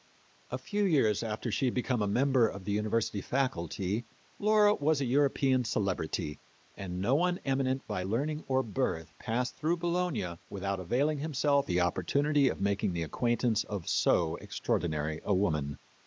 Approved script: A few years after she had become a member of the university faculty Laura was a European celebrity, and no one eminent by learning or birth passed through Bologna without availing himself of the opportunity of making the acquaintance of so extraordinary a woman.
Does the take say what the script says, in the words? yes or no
no